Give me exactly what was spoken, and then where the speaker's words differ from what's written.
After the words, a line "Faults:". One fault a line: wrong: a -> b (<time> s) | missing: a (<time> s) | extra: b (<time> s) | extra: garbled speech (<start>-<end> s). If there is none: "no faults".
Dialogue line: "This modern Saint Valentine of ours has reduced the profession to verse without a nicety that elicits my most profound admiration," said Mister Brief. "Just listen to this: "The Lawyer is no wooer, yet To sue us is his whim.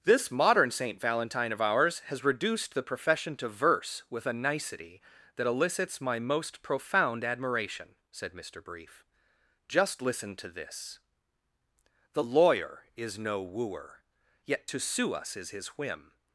"This modern Saint Valentine of ours has reduced the profession to verse with a nicety that elicits my most profound admiration," said Mister Brief. "Just listen to this: "The Lawyer is no wooer, yet To sue us is his whim.
Faults:
wrong: without -> with (4.1 s)